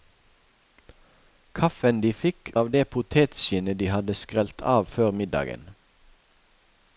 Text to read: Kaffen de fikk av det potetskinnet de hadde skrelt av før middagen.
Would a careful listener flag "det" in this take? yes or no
no